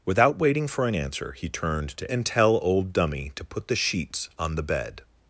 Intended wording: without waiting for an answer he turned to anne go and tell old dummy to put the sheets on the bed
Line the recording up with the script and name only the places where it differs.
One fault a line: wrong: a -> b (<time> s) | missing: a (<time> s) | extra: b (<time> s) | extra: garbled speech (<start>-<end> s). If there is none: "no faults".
missing: anne go (2.1 s)